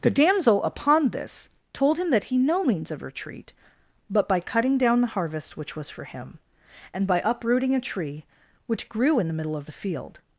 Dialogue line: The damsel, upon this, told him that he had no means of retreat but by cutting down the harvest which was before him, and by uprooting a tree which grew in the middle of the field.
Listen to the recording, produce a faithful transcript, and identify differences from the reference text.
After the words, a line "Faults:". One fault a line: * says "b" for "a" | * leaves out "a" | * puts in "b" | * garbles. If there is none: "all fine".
The damsel, upon this, told him that he no means of retreat but by cutting down the harvest which was for him, and by uprooting a tree which grew in the middle of the field.
Faults:
* leaves out "had"
* says "for" for "before"